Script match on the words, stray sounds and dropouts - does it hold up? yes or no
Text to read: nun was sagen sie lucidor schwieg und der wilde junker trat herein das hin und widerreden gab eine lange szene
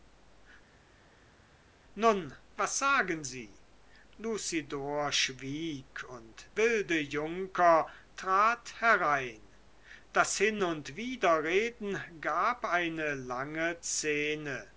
no